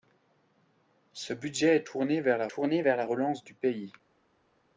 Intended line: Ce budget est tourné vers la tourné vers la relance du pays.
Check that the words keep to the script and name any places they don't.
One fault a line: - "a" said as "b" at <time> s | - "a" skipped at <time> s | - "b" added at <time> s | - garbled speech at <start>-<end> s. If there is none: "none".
none